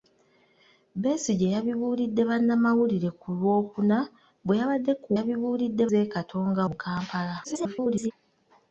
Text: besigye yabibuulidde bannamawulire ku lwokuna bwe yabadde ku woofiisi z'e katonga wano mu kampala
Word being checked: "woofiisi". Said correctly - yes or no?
no